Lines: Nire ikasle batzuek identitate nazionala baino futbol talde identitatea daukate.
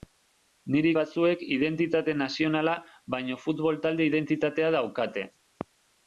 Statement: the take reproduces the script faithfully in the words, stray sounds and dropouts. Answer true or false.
false